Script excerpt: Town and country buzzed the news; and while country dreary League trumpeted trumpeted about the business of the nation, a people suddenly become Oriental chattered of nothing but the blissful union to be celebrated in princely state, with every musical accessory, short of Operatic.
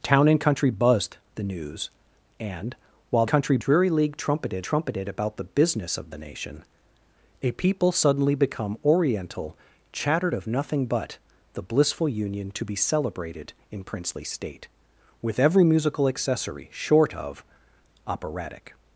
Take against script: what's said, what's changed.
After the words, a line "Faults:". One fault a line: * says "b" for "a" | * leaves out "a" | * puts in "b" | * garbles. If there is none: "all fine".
Town and country buzzed the news; and while country dreary League trumpeted trumpeted about the business of the nation, a people suddenly become Oriental chattered of nothing but the blissful union to be celebrated in princely state, with every musical accessory, short of Operatic.
Faults:
all fine